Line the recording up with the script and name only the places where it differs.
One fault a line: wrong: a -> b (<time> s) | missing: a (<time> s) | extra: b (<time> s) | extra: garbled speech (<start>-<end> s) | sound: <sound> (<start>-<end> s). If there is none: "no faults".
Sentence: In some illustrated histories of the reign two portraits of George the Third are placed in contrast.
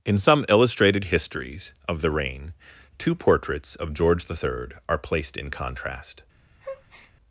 sound: breath (6.6-7.1 s)